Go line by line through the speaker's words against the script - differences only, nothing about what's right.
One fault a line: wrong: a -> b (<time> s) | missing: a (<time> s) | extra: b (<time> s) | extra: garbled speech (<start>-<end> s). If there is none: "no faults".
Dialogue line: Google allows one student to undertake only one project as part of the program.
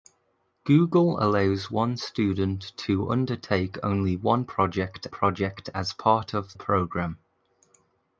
extra: project (5.1 s)
missing: the (6.6 s)